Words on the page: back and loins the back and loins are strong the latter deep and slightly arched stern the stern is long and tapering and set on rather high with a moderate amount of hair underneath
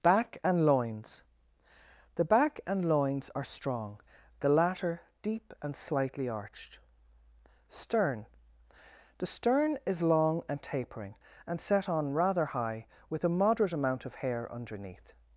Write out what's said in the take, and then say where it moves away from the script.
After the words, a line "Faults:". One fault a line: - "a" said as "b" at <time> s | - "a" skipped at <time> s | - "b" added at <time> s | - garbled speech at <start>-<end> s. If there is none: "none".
back and loins the back and loins are strong the latter deep and slightly arched stern the stern is long and tapering and set on rather high with a moderate amount of hair underneath
Faults:
none